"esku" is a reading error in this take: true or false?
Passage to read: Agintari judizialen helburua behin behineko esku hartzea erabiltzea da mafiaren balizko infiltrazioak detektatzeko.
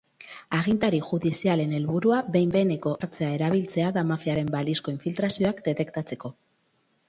true